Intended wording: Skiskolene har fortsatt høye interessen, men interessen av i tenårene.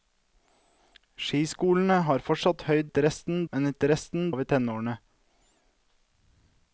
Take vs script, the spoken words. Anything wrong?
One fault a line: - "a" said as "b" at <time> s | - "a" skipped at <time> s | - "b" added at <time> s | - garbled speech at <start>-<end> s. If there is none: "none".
none